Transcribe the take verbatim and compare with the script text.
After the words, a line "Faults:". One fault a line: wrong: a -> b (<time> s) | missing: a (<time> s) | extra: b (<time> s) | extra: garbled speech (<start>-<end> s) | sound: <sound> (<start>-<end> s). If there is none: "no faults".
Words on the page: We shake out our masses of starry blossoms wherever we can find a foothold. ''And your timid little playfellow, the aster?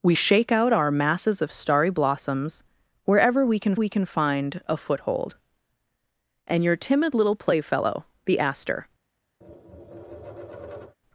We shake out our masses of starry blossoms wherever we can we can find a foothold. ''And your timid little playfellow, the aster?
Faults:
extra: we can (3.7 s)
sound: tap (9.4-11.0 s)